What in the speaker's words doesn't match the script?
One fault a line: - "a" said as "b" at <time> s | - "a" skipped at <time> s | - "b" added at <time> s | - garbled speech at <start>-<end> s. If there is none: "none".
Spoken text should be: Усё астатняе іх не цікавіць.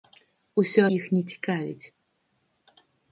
- "астатняе" skipped at 0.8 s